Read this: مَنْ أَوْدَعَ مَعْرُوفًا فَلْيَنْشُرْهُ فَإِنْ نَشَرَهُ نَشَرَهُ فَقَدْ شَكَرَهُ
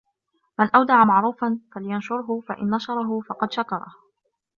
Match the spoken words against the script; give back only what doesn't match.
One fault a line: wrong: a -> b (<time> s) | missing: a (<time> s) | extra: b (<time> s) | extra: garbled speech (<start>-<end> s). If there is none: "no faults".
missing: نَشَرَهُ (3.2 s)